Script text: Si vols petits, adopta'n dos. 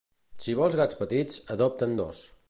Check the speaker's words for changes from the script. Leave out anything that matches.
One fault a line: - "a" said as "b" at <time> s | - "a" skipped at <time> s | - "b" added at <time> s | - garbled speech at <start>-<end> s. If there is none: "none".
- "gats" added at 0.8 s